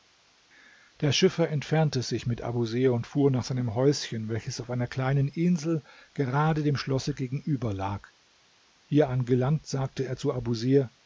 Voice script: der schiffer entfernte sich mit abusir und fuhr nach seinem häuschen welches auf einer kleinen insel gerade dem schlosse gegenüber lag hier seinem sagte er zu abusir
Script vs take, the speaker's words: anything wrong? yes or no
yes